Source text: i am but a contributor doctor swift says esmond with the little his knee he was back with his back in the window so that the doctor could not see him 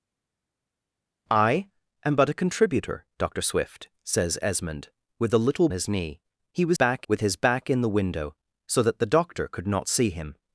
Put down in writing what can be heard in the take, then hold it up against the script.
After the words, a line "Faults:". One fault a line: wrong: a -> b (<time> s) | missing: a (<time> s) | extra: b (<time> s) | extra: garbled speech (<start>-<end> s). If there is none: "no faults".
i am but a contributor doctor swift says esmond with the little his knee he was back with his back in the window so that the doctor could not see him
Faults:
no faults